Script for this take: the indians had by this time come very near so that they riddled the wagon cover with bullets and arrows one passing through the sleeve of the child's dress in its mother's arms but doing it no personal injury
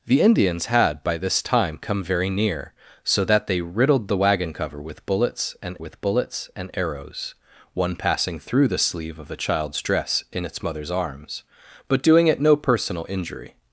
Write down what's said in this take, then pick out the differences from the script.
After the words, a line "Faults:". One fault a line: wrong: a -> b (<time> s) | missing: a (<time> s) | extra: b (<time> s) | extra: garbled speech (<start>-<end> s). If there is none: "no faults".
the indians had by this time come very near so that they riddled the wagon cover with bullets and with bullets and arrows one passing through the sleeve of the child's dress in its mother's arms but doing it no personal injury
Faults:
extra: with bullets and (5.8 s)